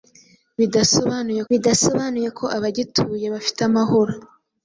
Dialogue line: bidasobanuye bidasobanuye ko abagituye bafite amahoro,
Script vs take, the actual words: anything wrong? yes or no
no